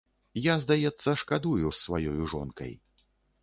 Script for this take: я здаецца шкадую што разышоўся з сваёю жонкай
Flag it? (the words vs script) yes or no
yes